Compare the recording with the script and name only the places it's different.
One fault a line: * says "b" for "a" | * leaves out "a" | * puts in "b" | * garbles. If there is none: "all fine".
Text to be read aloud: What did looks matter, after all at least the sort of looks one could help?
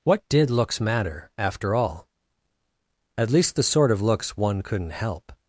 * says "couldn't" for "could"